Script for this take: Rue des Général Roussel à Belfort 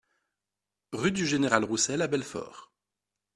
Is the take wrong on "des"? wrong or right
wrong